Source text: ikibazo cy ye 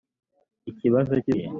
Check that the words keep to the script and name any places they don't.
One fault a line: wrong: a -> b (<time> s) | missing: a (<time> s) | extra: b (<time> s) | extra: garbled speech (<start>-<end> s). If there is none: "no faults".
no faults